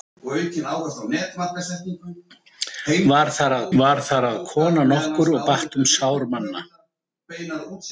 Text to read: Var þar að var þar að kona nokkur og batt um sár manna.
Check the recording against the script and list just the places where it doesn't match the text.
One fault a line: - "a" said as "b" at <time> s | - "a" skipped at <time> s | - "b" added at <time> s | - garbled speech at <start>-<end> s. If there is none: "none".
none